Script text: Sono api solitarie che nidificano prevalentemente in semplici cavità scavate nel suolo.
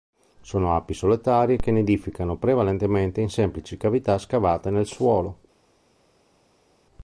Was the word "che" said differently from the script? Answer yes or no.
no